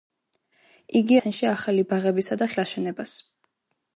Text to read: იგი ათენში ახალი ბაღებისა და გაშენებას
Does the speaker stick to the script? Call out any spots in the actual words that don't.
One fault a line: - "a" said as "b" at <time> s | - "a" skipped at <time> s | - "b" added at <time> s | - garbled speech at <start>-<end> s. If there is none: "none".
none